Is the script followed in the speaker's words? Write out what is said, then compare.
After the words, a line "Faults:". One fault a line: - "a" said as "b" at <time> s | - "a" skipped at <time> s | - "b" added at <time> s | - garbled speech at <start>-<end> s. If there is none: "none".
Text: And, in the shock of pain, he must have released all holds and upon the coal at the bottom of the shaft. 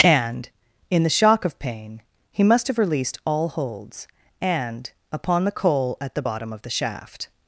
And, in the shock of pain, he must have released all holds and upon the coal at the bottom of the shaft.
Faults:
none